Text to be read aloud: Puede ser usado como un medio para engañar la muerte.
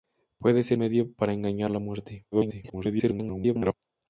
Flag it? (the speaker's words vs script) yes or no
yes